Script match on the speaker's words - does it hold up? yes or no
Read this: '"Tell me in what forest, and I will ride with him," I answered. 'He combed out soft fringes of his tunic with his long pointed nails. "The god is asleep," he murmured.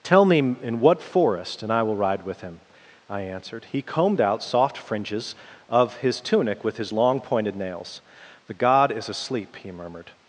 yes